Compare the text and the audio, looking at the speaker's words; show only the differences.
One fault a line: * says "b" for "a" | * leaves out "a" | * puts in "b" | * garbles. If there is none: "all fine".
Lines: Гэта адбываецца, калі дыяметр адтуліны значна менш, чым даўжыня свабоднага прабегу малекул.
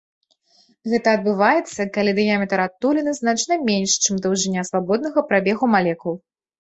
all fine